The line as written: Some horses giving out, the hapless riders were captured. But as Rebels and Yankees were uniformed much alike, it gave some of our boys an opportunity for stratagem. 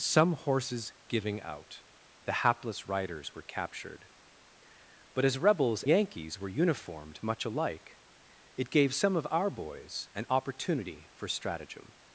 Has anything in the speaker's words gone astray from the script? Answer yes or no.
yes